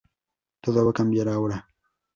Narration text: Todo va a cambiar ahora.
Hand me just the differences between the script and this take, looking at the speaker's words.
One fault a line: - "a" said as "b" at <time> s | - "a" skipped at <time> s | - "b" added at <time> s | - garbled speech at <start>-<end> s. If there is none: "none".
none